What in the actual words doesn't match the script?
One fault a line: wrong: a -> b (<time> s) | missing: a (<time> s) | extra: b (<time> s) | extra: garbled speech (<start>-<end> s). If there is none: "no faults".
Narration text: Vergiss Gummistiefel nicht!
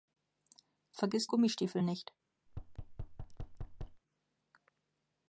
no faults